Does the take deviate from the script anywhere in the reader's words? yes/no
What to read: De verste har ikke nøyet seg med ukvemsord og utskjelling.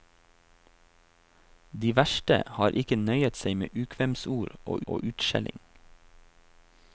yes